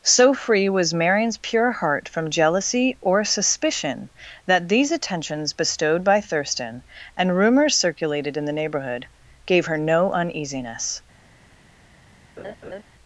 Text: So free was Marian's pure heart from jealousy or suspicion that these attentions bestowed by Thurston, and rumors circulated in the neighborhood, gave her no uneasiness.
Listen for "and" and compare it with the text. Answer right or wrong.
right